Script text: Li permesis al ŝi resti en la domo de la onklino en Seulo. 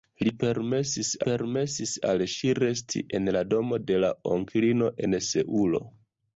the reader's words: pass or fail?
fail